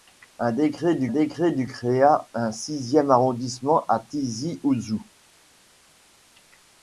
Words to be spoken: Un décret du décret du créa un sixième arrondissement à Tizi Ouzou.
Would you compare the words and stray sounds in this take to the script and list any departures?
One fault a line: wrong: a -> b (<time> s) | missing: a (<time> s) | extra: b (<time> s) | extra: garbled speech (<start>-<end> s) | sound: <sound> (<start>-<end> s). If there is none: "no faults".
no faults